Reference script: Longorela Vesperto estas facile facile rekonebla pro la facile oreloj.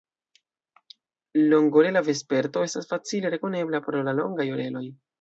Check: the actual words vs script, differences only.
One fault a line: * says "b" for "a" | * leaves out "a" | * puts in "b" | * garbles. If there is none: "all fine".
* leaves out "facile"
* says "longaj" for "facile"